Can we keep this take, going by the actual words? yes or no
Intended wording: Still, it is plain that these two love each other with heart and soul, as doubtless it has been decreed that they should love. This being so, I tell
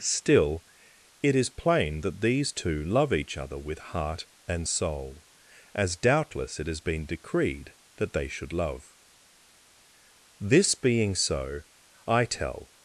yes